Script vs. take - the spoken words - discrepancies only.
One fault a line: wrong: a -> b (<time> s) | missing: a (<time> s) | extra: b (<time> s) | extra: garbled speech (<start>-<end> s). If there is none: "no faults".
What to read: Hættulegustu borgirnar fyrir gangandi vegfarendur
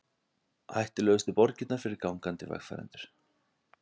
no faults